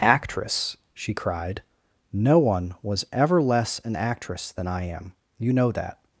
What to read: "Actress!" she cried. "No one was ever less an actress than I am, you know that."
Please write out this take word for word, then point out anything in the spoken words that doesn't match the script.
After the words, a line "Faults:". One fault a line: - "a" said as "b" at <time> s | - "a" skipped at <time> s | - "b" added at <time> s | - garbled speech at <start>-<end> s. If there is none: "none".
"Actress!" she cried. "No one was ever less an actress than I am, you know that."
Faults:
none